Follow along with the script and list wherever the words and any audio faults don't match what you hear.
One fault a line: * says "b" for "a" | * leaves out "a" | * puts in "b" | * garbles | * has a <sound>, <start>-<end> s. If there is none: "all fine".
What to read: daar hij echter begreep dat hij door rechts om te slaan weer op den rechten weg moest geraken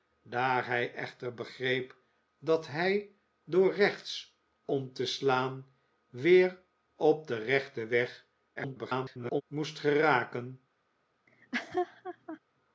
* garbles
* has a laugh, 11.3-12.4 s